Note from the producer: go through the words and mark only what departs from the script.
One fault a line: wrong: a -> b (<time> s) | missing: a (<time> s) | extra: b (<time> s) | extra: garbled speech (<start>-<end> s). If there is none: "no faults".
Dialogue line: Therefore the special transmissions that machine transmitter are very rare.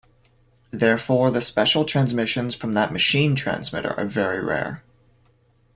extra: from (2.5 s)